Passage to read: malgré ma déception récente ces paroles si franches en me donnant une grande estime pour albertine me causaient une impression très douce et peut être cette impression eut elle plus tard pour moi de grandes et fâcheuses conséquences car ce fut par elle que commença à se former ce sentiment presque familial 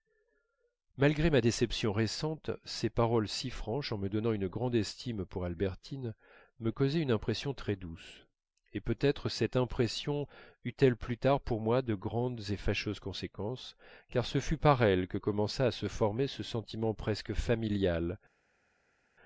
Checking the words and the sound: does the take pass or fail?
pass